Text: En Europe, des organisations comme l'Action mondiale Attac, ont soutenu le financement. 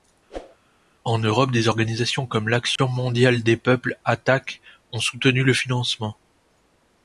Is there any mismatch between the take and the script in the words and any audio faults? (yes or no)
yes